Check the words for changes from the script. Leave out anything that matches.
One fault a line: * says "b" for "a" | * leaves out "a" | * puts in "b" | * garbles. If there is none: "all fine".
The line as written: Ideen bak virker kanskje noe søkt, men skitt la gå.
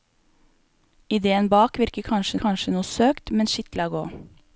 * puts in "kanskje"